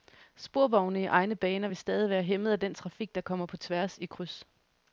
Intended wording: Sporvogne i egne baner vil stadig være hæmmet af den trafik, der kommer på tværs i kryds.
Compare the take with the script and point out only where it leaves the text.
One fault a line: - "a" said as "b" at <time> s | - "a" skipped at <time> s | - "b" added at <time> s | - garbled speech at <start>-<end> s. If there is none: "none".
none